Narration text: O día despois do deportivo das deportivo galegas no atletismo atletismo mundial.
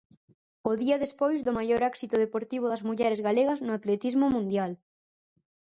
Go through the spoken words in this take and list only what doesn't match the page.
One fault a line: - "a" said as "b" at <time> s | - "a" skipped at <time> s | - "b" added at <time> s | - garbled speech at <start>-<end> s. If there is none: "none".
- "maior éxito" added at 1.6 s
- "deportivo" said as "mulleres" at 2.9 s
- "atletismo" skipped at 4.3 s